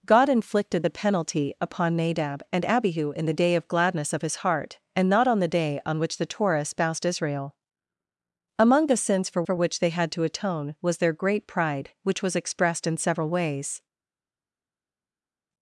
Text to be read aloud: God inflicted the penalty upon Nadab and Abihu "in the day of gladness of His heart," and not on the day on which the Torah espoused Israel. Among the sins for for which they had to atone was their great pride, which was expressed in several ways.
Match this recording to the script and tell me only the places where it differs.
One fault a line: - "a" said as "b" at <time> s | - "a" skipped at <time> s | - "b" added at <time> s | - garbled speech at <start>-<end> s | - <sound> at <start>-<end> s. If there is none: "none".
none